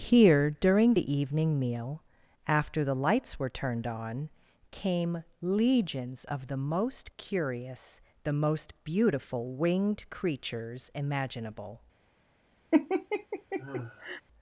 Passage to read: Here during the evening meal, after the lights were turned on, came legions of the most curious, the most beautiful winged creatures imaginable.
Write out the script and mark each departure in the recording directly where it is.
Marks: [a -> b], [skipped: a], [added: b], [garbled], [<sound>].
Here during the evening meal, after the lights were turned on, came legions of the most curious, the most beautiful winged creatures imaginable. [laugh]